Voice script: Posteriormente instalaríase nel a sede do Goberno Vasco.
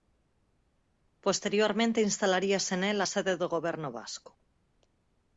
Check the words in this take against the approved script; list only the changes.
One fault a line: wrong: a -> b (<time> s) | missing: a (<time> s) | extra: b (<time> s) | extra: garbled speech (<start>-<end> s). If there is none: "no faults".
no faults